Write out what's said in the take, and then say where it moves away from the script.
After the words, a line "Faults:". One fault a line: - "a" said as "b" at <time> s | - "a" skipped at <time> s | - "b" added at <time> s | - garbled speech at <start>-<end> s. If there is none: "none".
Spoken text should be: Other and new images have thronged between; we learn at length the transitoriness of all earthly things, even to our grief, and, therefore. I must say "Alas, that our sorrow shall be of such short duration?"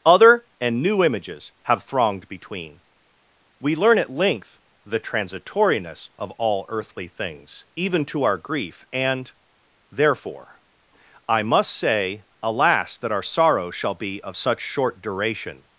Other and new images have thronged between; we learn at length the transitoriness of all earthly things, even to our grief, and, therefore. I must say "Alas, that our sorrow shall be of such short duration?"
Faults:
none